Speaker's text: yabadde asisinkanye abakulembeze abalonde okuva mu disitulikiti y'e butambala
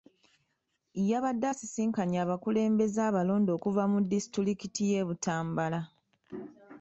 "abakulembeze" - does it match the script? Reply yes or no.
yes